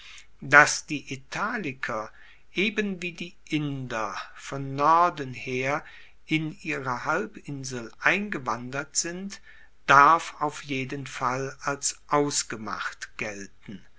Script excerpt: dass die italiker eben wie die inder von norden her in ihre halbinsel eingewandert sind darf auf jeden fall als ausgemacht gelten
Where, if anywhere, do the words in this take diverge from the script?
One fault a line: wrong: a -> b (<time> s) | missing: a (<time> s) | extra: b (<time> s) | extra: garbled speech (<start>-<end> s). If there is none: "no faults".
no faults